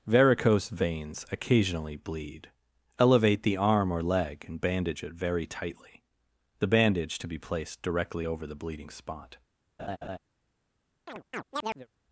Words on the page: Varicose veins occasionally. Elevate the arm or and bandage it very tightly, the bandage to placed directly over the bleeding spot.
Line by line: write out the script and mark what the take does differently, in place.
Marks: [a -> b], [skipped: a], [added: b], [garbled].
Varicose veins occasionally. [added: bleed] Elevate the arm or [added: leg] and bandage it very tightly, the bandage to [added: be] placed directly over the bleeding spot.